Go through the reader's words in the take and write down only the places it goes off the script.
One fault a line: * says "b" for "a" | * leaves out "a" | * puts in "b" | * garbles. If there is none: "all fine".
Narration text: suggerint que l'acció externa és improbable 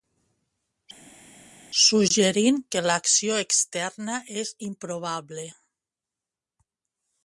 all fine